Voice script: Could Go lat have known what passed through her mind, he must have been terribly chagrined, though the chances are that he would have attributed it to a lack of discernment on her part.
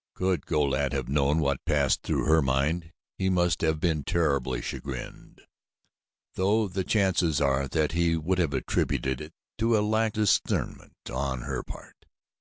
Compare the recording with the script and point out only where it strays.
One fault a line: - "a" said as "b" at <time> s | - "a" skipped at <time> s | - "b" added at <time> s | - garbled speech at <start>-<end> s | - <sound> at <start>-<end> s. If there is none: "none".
- "of" skipped at 10.2 s